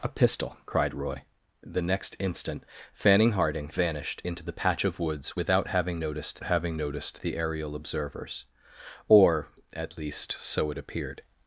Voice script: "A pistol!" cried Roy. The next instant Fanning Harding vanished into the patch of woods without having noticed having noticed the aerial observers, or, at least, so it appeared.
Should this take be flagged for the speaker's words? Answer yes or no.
no